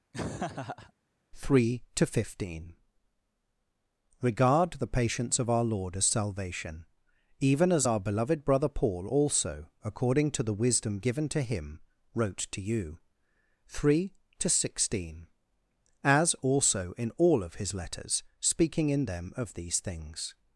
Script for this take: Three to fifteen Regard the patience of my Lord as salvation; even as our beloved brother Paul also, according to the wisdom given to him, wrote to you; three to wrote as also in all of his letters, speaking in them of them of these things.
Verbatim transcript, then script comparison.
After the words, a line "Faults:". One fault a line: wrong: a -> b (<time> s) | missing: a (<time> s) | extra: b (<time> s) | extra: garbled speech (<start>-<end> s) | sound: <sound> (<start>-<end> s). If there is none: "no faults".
Three to fifteen Regard the patience of our Lord as salvation; even as our beloved brother Paul also, according to the wisdom given to him, wrote to you; three to sixteen as also in all of his letters, speaking in them of these things.
Faults:
sound: laugh (0.1-0.9 s)
wrong: my -> our (5.5 s)
wrong: wrote -> sixteen (14.5 s)
missing: them of (19.5 s)